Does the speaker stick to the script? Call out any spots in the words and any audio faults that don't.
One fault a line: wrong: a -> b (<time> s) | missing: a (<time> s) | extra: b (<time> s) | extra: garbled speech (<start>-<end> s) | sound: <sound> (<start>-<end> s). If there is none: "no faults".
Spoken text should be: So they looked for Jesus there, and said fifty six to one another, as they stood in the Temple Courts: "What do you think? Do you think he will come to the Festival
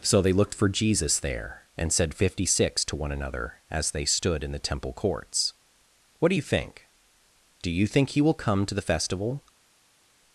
no faults